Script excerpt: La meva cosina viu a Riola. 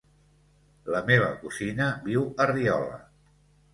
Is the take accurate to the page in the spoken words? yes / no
yes